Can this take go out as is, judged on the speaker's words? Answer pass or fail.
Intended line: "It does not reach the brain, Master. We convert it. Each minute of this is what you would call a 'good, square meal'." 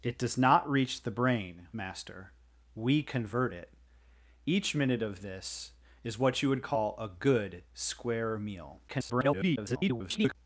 fail